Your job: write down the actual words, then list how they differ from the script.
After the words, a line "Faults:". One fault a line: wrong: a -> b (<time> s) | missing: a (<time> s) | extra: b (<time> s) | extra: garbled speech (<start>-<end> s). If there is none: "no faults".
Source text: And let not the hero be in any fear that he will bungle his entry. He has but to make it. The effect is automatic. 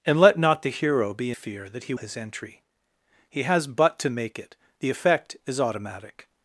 And let not the hero be fear that he his entry. He has but to make it. The effect is automatic.
Faults:
missing: in any (1.3 s)
missing: will bungle (1.9 s)